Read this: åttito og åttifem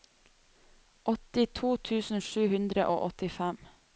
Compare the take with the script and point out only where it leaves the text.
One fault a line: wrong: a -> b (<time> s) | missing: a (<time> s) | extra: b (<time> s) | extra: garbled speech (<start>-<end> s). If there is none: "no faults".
extra: tusen sju hundre (1.9 s)